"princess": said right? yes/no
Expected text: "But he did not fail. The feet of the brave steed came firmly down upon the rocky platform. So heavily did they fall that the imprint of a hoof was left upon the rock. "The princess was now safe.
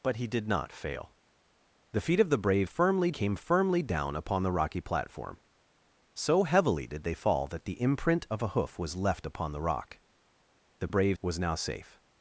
no